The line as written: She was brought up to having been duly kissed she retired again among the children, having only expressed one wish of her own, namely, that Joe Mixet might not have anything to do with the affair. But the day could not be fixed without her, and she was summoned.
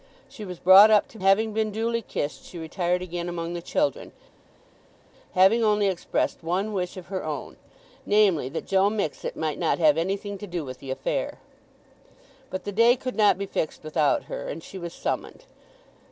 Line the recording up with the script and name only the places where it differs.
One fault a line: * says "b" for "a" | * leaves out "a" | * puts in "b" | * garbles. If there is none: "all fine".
all fine